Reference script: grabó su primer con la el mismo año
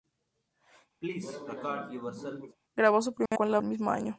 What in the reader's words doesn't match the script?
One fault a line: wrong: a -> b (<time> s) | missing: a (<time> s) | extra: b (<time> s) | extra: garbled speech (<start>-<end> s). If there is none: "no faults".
no faults